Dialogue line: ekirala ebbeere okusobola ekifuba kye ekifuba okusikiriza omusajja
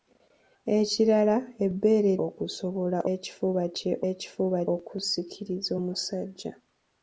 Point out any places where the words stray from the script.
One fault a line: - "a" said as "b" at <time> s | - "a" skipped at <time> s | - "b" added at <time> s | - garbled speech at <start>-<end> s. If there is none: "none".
none